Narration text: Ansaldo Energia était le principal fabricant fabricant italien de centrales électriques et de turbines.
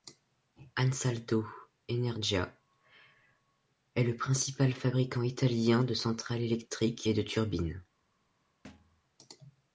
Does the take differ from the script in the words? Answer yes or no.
yes